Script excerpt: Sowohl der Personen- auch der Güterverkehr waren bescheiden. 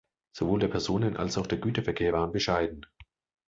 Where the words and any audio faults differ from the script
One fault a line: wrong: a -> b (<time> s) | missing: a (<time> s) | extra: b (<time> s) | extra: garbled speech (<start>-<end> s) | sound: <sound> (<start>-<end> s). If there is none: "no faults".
extra: als (1.2 s)